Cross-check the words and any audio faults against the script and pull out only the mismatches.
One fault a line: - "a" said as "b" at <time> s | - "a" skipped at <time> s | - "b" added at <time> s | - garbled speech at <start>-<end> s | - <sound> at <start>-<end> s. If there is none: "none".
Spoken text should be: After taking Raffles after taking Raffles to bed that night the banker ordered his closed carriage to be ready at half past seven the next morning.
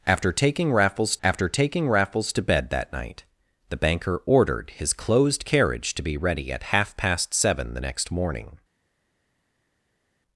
none